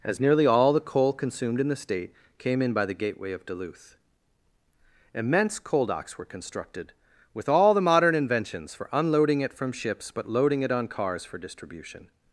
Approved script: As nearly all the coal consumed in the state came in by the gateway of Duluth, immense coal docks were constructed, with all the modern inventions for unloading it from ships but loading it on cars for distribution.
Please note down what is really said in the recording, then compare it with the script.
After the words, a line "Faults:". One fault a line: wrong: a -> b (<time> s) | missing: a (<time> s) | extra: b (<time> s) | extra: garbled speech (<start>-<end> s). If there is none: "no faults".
As nearly all the coal consumed in the state came in by the gateway of Duluth, immense coal docks were constructed, with all the modern inventions for unloading it from ships but loading it on cars for distribution.
Faults:
no faults